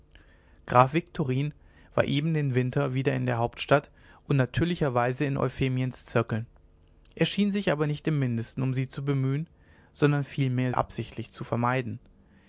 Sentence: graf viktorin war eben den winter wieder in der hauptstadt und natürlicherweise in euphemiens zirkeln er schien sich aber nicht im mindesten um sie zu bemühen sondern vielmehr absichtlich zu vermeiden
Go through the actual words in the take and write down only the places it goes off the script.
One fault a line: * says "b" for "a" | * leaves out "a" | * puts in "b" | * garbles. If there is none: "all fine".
all fine